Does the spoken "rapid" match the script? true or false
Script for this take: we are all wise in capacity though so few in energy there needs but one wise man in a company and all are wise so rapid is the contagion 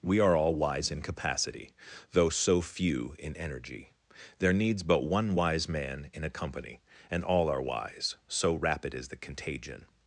true